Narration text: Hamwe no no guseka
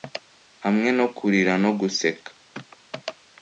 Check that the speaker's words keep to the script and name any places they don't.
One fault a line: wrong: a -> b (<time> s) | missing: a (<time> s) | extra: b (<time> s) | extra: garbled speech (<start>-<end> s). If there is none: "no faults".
extra: kurira (1.2 s)